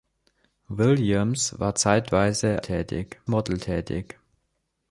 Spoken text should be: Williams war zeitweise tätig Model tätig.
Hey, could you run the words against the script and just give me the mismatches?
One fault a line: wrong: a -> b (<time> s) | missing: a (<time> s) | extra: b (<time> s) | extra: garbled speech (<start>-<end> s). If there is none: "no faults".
no faults